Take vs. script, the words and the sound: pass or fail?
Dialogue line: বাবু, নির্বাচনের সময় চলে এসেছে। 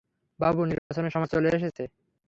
fail